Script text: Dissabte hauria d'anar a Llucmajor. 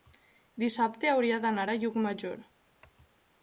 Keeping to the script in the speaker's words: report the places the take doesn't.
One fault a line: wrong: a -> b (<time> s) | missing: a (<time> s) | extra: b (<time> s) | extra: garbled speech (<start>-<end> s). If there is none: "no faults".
no faults